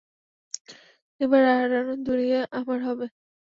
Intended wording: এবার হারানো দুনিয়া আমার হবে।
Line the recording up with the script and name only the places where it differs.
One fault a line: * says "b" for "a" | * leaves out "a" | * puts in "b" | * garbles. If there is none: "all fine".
all fine